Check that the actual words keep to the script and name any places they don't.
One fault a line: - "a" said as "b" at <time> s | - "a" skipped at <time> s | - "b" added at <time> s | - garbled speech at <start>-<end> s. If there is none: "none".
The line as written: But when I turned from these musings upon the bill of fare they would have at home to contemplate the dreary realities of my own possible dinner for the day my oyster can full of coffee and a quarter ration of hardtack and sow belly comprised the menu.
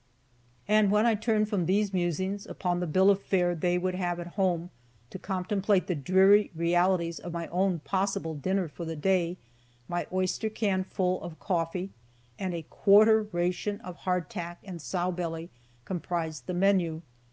- "But" said as "And" at 0.7 s